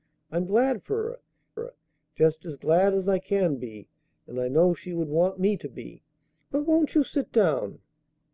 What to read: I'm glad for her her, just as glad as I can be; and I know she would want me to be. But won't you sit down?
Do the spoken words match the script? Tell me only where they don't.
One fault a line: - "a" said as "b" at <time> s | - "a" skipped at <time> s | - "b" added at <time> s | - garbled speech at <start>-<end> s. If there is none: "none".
none